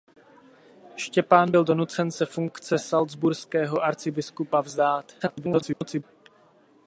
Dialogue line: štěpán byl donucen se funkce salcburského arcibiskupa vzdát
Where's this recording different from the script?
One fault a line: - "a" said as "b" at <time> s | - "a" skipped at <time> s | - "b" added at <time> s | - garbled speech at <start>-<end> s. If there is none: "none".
- garbled speech at 5.2-6.0 s